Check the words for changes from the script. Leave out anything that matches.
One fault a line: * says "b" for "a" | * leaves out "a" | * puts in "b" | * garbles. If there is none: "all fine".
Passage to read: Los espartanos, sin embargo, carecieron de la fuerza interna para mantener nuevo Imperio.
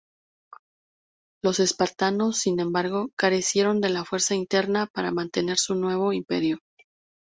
* puts in "su"